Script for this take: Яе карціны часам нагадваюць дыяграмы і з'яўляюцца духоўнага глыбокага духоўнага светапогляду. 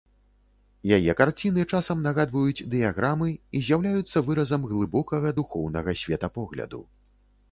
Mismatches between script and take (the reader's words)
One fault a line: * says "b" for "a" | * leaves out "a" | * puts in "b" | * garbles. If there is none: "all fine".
* says "выразам" for "духоўнага"